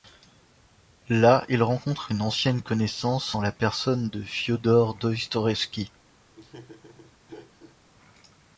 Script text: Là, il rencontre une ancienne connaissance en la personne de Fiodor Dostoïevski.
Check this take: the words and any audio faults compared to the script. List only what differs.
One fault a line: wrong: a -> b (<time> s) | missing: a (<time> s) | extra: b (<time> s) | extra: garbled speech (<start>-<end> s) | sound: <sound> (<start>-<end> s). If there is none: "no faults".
sound: laugh (6.3-7.8 s)